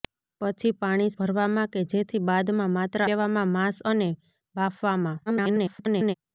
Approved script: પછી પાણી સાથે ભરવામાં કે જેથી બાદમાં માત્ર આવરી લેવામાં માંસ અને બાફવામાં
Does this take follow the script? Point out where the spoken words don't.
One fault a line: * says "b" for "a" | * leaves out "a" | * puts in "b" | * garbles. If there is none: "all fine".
* leaves out "સાથે"
* leaves out "આવરી"
* garbles